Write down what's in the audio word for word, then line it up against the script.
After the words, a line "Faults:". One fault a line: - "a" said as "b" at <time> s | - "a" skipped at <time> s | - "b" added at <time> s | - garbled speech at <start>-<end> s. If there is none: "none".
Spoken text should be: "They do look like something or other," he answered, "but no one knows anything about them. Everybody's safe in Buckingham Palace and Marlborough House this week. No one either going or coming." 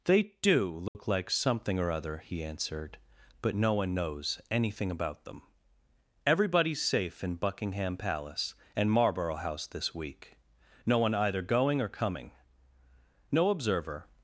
"They do look like something or other," he answered, "but no one knows anything about them. Everybody's safe in Buckingham Palace and Marlborough House this week. No one either going or coming." No observer
Faults:
- "No observer" added at 13.3 s